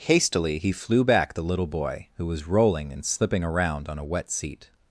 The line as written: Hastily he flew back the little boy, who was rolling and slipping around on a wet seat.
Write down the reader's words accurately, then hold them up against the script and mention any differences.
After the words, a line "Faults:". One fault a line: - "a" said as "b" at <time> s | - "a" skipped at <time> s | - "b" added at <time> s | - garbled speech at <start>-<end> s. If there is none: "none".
Hastily he flew back the little boy, who was rolling and slipping around on a wet seat.
Faults:
none